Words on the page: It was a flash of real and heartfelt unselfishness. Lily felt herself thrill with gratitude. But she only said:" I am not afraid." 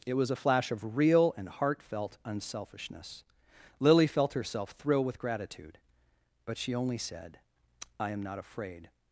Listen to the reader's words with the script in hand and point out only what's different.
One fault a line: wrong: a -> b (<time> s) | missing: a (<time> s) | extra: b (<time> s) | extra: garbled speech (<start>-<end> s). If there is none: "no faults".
no faults